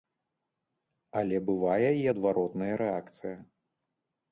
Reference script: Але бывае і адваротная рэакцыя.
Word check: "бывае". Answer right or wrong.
right